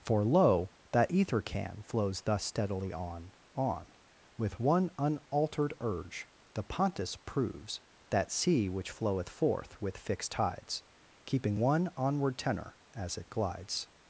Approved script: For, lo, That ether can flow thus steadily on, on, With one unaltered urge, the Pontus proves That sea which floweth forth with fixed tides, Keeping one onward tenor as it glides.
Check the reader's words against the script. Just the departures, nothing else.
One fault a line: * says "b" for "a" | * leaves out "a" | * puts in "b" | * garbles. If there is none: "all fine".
* says "flows" for "flow"